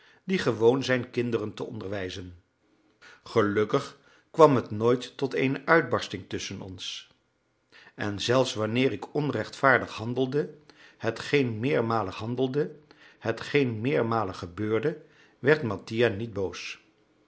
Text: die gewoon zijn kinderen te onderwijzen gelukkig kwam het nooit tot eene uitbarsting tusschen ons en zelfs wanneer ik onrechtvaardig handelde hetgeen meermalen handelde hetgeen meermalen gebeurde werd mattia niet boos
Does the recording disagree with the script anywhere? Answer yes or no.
no